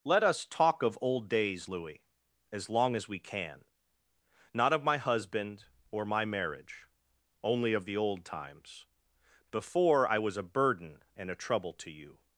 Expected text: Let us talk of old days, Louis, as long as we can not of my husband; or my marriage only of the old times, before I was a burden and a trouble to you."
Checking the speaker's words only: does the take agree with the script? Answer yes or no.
yes